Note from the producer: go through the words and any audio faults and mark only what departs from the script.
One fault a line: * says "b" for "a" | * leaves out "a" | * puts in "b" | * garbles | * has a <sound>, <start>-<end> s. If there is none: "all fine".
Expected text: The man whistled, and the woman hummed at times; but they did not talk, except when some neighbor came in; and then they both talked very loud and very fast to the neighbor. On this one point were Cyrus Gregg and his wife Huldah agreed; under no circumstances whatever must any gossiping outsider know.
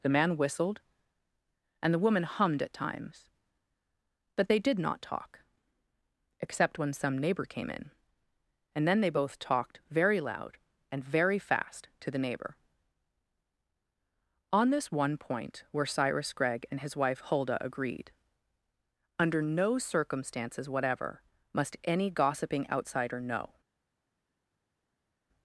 all fine